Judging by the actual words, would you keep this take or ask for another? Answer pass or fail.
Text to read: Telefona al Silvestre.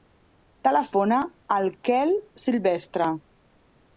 fail